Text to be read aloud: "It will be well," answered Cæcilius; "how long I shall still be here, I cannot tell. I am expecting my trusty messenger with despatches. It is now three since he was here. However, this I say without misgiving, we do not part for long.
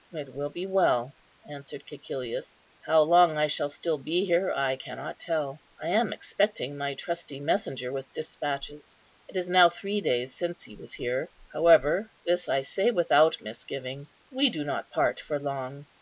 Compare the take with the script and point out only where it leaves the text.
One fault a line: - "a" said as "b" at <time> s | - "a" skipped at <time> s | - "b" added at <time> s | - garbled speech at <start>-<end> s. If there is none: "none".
- "days" added at 10.0 s